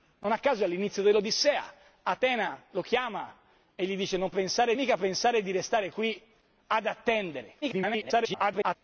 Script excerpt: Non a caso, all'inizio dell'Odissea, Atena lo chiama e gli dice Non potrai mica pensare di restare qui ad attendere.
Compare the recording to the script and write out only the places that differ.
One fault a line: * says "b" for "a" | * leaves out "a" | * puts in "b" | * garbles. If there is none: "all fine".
* says "pensare" for "potrai"
* garbles